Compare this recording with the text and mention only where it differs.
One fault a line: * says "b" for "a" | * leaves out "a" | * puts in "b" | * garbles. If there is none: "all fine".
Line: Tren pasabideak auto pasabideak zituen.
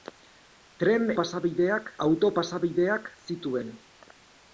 all fine